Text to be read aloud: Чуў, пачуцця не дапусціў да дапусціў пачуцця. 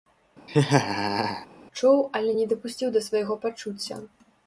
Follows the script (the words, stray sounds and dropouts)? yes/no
no